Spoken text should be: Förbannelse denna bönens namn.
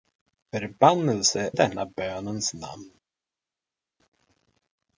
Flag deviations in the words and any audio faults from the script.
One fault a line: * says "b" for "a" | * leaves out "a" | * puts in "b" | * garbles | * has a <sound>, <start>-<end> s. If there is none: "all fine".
all fine